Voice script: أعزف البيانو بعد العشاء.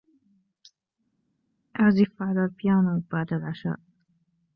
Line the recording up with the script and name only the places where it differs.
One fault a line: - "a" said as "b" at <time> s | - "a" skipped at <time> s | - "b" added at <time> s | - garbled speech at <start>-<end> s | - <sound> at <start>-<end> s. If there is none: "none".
- "على" added at 2.2 s